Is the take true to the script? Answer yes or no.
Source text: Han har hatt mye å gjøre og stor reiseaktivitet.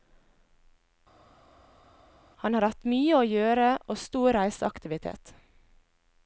yes